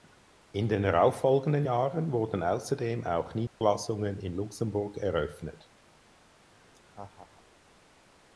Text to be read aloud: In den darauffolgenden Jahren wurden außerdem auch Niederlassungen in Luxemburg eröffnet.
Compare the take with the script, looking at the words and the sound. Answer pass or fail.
fail